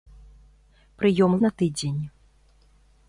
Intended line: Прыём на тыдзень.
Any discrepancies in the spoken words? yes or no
no